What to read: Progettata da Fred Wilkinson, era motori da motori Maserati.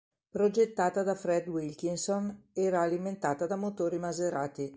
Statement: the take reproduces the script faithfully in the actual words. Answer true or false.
false